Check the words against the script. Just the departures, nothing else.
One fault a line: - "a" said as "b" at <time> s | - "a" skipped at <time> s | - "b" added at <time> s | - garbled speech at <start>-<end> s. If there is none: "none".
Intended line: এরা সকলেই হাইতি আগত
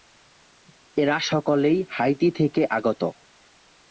- "থেকে" added at 2.3 s